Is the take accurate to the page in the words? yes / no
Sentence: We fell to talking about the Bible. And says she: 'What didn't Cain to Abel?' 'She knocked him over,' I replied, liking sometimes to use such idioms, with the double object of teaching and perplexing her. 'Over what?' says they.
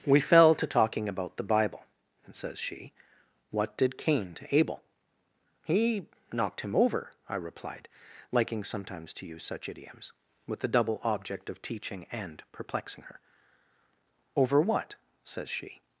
no